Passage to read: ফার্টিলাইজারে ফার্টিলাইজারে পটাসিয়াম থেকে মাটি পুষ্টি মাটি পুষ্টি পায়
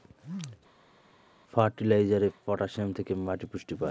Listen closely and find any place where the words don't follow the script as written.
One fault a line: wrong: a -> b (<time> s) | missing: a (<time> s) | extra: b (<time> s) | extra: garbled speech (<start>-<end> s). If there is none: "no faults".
missing: ফার্টিলাইজারে (2.3 s)
missing: মাটি পুষ্টি (3.7 s)